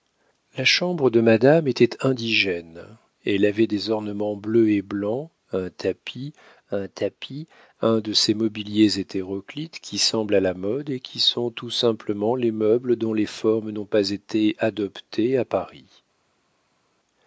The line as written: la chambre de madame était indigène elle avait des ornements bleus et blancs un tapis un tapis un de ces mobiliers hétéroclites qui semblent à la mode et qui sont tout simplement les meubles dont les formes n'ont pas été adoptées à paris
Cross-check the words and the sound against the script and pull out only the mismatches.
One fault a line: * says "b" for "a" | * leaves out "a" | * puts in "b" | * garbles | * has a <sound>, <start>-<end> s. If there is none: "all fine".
all fine